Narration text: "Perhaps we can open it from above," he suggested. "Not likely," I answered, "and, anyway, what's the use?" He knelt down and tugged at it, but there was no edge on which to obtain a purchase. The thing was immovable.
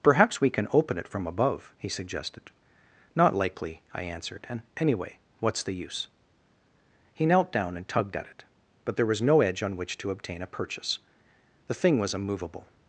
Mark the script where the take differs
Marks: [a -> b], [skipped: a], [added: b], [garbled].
"Perhaps we can open it from above," he suggested. "Not likely," I answered, "and, anyway, what's the use?" He knelt down and tugged at it, but there was no edge on which to obtain a purchase. The thing was immovable.